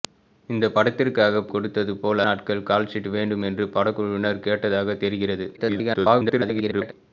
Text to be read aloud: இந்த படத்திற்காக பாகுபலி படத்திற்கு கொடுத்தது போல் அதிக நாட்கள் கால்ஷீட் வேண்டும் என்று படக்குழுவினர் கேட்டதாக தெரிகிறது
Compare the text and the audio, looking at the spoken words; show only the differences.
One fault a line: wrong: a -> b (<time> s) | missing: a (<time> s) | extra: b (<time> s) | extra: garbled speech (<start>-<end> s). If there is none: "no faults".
missing: பாகுபலி படத்திற்கு (1.4 s)
missing: அதிக (2.2 s)
extra: garbled speech (5.6-6.9 s)